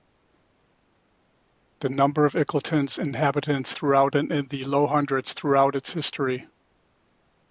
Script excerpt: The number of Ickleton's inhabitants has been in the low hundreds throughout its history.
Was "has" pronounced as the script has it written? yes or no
no